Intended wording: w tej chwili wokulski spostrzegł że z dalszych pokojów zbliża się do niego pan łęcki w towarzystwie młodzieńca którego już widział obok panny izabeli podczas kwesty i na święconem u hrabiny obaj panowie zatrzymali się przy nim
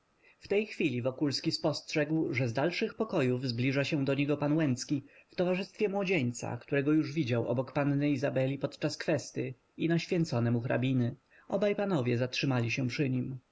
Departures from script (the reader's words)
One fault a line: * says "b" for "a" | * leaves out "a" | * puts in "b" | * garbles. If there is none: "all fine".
all fine